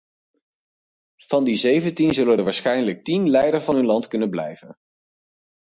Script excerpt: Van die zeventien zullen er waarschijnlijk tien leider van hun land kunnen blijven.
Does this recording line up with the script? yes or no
yes